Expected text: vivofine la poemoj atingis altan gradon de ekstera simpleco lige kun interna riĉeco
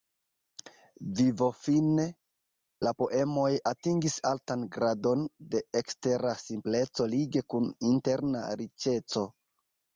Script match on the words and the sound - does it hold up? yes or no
yes